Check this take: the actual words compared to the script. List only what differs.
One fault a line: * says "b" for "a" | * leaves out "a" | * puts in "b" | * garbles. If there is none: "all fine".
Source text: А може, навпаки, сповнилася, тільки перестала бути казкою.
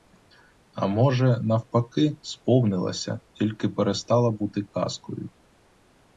all fine